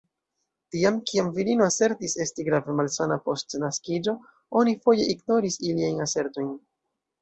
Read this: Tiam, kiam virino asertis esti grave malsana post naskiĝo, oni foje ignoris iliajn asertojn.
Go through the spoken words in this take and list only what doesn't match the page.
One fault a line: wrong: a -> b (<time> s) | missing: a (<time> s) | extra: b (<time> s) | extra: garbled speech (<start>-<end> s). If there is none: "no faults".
no faults